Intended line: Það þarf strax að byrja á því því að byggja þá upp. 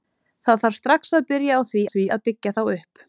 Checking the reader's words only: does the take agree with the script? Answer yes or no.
yes